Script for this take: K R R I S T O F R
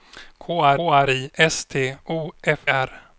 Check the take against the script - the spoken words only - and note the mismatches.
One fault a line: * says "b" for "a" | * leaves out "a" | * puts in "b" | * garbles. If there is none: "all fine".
all fine